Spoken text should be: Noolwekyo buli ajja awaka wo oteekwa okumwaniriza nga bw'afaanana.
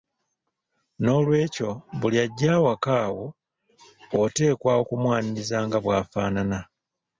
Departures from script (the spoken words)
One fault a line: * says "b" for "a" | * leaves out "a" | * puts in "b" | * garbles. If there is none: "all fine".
all fine